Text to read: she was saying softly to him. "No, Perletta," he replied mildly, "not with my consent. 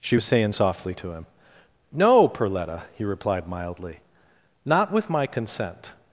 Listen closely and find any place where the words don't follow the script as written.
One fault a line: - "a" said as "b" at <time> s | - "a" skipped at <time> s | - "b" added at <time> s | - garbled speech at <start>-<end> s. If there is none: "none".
none